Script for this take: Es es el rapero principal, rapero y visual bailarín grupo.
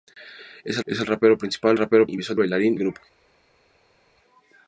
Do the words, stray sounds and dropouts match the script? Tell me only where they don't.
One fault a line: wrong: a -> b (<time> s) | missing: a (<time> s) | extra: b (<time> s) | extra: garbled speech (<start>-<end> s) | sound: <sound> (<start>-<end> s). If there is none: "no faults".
no faults